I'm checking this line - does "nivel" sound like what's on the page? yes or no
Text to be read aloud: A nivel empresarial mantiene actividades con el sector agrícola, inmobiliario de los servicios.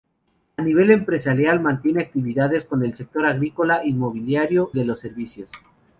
yes